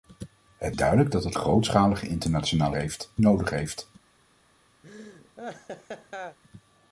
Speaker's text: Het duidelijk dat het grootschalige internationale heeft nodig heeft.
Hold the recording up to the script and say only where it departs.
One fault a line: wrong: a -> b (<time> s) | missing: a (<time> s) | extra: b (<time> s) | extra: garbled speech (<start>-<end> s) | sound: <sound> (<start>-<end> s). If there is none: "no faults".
sound: laugh (4.8-6.4 s)